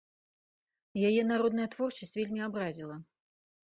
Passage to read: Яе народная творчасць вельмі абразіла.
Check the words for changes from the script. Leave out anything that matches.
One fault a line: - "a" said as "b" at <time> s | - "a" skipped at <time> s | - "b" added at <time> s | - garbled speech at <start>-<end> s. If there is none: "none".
none